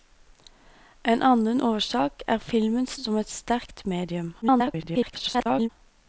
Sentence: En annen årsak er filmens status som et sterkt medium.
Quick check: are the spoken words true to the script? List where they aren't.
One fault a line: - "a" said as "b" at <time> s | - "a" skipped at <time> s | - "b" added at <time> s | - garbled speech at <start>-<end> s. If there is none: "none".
- "status" skipped at 2.9 s
- garbled speech at 4.4-5.7 s